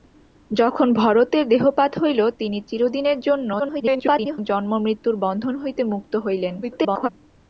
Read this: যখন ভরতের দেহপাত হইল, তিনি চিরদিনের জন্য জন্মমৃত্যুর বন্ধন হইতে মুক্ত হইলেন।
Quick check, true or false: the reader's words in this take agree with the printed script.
false